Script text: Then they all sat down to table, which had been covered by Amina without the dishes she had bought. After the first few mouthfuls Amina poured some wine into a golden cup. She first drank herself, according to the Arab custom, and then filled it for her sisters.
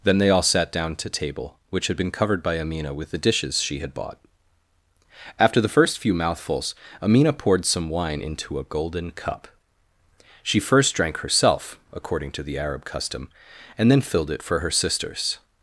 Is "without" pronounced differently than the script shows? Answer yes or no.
yes